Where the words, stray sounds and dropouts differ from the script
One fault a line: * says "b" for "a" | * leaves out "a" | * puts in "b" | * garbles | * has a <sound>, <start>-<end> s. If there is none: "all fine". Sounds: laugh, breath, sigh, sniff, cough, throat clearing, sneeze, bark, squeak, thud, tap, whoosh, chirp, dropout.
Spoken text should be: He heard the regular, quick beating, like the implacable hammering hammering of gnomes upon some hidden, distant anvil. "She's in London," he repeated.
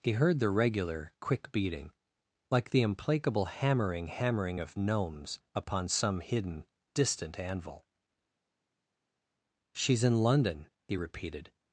all fine